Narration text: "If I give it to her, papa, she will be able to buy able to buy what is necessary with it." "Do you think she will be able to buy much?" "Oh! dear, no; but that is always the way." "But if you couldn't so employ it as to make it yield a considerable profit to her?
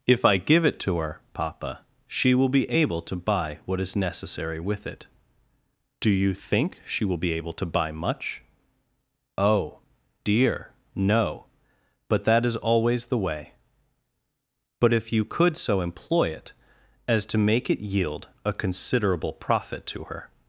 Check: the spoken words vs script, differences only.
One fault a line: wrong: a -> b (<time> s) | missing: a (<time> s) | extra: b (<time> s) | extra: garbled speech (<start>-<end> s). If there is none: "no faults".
missing: able to buy (3.6 s)
wrong: couldn't -> could (15.2 s)